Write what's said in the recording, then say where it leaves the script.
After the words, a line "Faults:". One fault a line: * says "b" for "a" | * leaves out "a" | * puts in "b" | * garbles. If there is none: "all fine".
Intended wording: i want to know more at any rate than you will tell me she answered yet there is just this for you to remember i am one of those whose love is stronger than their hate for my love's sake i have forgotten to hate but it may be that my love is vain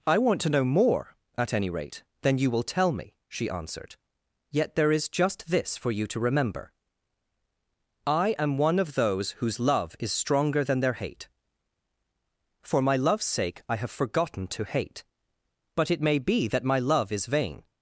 i want to know more at any rate than you will tell me she answered yet there is just this for you to remember i am one of those whose love is stronger than their hate for my love's sake i have forgotten to hate but it may be that my love is vain
Faults:
all fine